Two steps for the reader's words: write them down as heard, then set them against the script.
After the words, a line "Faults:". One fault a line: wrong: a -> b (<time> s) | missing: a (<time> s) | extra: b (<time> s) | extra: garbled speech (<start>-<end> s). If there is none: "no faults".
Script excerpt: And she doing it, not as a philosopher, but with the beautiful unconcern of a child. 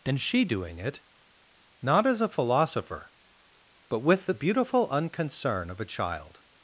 And she doing it, not as a philosopher, but with the beautiful unconcern of a child.
Faults:
no faults